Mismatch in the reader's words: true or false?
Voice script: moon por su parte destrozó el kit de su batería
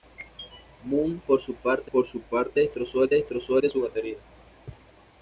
true